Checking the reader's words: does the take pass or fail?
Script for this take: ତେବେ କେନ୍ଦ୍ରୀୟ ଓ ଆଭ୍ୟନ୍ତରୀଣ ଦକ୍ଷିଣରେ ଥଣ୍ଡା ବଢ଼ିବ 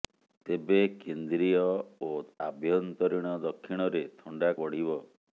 pass